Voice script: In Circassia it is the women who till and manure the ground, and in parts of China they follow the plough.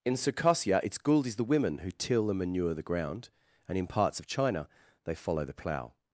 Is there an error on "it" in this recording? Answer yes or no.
yes